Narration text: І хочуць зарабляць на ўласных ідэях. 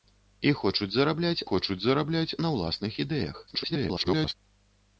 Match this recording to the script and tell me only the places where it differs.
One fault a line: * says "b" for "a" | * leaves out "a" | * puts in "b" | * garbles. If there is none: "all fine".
* puts in "хочуць зарабляць"
* garbles